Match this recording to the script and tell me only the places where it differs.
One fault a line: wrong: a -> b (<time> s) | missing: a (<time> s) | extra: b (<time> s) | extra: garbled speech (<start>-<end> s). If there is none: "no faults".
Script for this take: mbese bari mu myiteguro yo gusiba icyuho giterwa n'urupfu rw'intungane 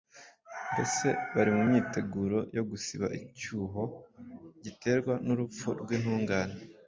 no faults